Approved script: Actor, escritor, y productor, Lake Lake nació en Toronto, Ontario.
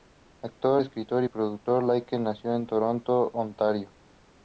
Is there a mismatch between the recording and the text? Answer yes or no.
yes